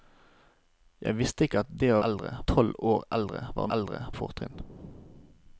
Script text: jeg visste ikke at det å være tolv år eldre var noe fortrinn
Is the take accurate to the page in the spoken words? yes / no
no